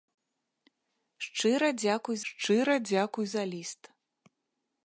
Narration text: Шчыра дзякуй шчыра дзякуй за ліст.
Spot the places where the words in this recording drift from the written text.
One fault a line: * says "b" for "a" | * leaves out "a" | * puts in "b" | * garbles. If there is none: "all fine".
all fine